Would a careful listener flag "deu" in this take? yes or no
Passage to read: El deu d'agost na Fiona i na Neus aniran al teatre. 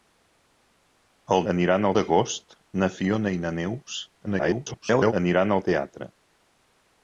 yes